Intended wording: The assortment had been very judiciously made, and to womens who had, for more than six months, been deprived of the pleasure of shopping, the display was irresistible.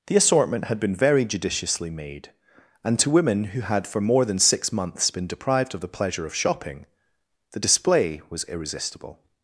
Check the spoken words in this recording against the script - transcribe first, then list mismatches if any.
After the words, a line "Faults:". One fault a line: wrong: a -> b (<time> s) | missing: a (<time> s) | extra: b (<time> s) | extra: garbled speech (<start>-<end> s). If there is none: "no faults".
The assortment had been very judiciously made, and to women who had, for more than six months, been deprived of the pleasure of shopping, the display was irresistible.
Faults:
wrong: womens -> women (3.1 s)